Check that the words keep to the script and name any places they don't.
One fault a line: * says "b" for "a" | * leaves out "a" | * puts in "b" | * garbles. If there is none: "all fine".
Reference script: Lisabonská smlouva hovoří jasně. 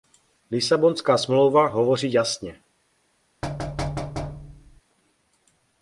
all fine